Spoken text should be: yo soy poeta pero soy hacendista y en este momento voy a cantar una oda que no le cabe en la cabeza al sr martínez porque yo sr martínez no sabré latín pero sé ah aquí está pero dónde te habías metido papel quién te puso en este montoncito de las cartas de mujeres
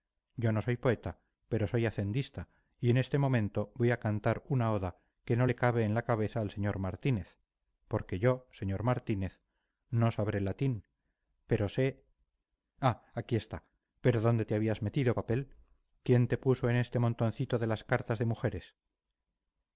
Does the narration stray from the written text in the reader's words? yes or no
yes